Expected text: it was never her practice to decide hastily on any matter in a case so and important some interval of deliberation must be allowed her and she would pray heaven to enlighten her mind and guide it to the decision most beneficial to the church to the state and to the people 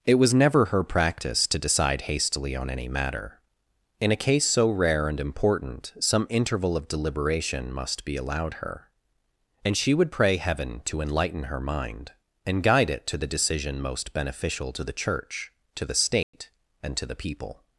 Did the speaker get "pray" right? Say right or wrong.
right